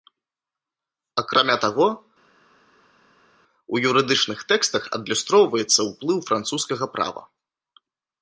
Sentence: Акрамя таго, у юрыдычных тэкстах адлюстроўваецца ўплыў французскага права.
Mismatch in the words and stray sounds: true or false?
false